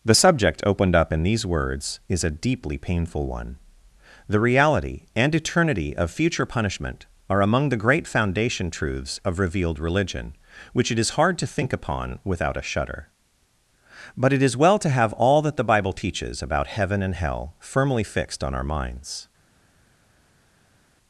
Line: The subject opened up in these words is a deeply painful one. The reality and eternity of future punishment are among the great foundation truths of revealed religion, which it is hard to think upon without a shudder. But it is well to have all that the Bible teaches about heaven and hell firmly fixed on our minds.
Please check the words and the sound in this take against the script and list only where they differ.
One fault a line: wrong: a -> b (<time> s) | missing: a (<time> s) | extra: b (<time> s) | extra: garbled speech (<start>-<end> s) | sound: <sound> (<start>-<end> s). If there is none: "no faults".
no faults